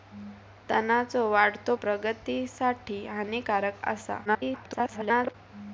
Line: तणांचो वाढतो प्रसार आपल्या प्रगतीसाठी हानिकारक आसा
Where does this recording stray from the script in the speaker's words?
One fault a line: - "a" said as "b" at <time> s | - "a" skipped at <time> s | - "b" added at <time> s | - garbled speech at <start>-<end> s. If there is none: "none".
- "प्रसार आपल्या" skipped at 1.8 s
- garbled speech at 4.2-5.3 s